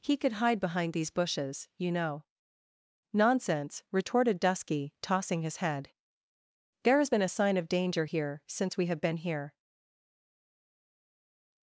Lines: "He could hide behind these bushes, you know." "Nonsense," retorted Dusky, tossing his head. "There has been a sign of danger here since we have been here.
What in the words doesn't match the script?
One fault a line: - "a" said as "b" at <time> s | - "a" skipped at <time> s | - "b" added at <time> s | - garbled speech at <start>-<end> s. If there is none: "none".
none